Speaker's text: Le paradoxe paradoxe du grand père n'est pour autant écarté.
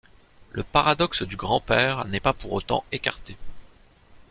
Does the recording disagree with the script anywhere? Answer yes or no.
yes